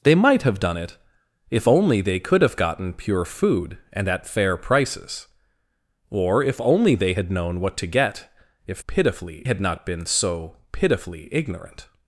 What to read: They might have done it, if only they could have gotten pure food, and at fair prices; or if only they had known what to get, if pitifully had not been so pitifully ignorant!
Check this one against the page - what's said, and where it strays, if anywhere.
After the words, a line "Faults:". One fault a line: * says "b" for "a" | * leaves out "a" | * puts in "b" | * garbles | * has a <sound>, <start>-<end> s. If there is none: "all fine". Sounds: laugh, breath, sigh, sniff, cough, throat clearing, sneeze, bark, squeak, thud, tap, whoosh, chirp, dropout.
They might have done it, if only they could have gotten pure food, and at fair prices; or if only they had known what to get, if pitifully had not been so pitifully ignorant!
Faults:
all fine